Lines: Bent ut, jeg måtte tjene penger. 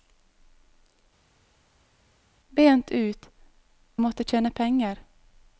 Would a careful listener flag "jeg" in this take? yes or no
yes